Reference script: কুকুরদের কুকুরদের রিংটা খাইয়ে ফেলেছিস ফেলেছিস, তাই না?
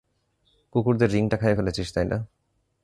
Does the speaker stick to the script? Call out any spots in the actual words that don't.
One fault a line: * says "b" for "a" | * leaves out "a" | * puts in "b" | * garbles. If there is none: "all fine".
* leaves out "কুকুরদের"
* leaves out "ফেলেছিস"